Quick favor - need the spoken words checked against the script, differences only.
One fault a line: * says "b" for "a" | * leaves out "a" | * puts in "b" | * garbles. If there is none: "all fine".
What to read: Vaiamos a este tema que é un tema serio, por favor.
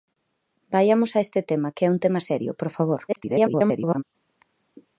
* garbles